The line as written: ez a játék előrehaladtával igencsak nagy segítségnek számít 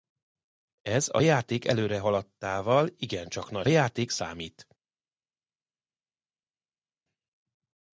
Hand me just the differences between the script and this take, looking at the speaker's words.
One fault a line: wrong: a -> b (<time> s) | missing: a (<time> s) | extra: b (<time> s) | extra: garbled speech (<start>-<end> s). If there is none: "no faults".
wrong: segítségnek -> játék (3.7 s)